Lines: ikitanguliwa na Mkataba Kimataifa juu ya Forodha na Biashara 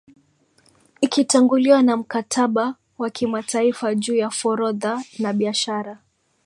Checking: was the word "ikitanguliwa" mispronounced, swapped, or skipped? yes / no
no